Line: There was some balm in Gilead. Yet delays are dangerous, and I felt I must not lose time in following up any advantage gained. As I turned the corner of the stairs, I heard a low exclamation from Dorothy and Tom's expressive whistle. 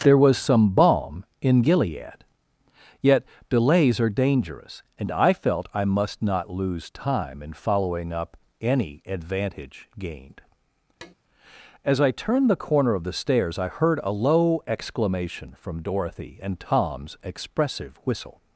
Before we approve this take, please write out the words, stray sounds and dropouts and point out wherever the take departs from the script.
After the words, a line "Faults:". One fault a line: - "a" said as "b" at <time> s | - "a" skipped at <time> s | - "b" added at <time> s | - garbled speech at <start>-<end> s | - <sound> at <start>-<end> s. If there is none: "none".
There was some balm in Gilead. Yet delays are dangerous, and I felt I must not lose time in following up any advantage gained. As I turned the corner of the stairs, I heard a low exclamation from Dorothy and Tom's expressive whistle.
Faults:
- tap at 11.0-11.1 s